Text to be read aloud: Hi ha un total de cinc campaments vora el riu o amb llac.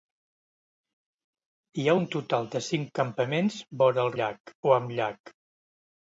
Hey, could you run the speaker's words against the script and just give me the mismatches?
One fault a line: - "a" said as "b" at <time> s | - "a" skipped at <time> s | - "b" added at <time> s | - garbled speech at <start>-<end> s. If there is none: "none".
- "riu" said as "llac" at 4.2 s